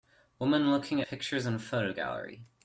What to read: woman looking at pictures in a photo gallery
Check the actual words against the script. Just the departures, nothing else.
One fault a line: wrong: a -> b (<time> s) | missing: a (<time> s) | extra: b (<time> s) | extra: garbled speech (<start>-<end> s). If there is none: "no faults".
missing: at (1.0 s)